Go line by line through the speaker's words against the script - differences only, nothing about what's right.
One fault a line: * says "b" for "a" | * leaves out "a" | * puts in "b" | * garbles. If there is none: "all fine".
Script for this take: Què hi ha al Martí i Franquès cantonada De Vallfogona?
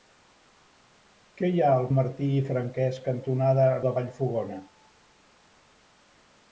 all fine